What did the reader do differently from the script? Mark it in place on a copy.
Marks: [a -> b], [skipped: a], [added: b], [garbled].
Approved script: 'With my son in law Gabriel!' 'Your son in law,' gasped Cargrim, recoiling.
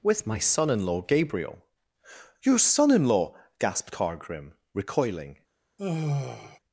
'With my son in law Gabriel!' 'Your son in law,' gasped Cargrim, recoiling.